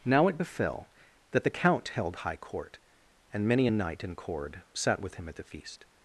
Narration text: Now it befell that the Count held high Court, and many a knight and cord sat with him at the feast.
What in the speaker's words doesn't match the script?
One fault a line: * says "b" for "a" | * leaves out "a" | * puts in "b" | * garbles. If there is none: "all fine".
all fine